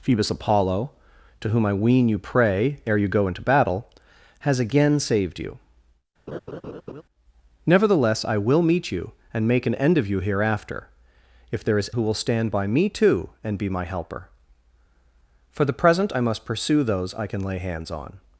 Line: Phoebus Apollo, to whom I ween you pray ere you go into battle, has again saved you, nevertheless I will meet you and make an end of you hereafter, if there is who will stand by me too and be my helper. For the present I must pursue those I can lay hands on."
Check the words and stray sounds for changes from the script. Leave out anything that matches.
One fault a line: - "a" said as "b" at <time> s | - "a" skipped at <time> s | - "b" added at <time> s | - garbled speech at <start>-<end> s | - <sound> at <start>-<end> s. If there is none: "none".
- laugh at 6.3-7.0 s